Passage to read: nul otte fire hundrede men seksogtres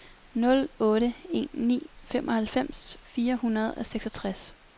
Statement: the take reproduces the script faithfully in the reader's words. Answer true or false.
false